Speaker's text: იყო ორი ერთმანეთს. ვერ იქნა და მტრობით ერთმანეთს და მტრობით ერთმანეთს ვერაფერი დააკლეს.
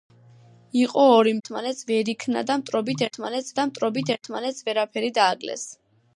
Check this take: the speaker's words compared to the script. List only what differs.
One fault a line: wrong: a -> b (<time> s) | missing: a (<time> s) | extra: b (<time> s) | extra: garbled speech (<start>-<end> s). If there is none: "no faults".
no faults